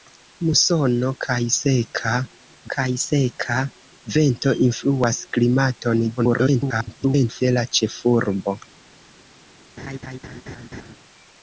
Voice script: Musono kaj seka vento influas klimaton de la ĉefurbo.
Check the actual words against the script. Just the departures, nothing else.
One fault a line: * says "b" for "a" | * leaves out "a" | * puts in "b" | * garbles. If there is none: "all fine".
* puts in "kaj seka"
* garbles